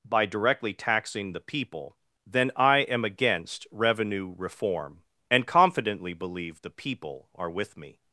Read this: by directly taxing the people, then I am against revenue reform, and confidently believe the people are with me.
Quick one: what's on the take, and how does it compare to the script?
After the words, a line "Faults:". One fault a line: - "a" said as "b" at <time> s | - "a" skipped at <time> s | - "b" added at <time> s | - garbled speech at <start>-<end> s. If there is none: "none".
by directly taxing the people, then I am against revenue reform, and confidently believe the people are with me.
Faults:
none